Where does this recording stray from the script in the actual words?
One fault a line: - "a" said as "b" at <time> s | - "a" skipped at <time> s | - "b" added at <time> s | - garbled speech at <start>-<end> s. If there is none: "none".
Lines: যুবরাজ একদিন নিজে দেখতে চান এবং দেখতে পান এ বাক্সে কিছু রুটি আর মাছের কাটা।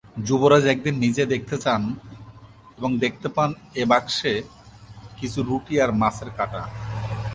none